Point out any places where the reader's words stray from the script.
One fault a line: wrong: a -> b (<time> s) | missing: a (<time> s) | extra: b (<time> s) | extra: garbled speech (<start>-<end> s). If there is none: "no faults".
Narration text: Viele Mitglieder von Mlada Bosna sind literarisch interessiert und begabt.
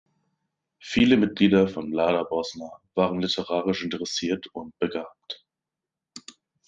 wrong: sind -> waren (3.0 s)